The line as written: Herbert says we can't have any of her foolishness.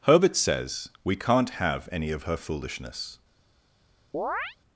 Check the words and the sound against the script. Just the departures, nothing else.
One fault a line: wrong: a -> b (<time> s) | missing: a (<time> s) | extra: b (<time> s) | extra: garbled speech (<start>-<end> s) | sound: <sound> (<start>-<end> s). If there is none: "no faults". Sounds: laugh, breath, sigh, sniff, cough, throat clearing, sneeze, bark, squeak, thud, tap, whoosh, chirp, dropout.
sound: chirp (4.1-4.6 s)